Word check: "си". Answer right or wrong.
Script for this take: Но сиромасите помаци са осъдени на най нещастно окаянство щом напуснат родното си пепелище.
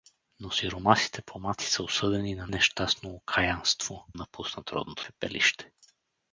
wrong